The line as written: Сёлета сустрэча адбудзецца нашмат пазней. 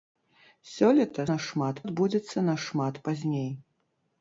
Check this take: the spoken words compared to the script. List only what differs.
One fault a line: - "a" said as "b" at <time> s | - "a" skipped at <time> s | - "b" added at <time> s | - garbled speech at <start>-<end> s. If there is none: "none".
- "сустрэча" said as "нашмат" at 1.3 s